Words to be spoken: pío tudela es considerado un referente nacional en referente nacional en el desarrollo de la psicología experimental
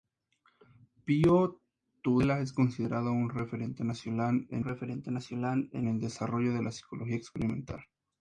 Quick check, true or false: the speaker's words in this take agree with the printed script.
true